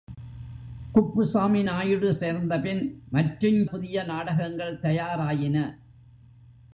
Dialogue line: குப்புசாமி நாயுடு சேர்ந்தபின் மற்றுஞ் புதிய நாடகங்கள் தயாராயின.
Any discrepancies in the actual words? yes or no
no